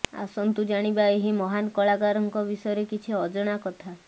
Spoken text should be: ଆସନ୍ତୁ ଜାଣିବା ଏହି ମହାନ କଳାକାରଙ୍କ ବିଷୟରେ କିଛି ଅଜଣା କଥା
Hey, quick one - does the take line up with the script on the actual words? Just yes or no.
yes